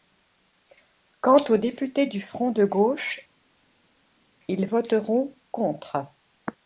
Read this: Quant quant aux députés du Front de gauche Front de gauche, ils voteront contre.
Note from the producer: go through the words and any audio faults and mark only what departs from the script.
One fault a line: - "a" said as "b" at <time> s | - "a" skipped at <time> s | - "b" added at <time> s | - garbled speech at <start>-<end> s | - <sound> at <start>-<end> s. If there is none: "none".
- "quant" skipped at 1.4 s
- "Front de gauche" skipped at 3.2 s